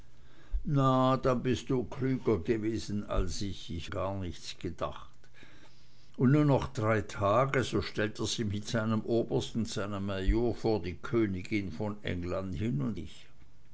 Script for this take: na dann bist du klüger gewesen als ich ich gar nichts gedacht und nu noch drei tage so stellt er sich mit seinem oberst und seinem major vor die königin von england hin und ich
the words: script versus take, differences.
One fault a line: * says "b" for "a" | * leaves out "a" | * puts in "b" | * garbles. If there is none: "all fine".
all fine